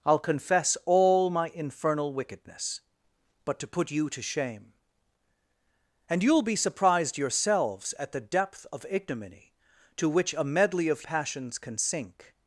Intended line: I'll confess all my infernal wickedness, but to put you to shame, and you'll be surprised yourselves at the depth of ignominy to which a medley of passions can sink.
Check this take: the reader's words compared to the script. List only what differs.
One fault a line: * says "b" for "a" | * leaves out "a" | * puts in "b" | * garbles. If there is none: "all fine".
all fine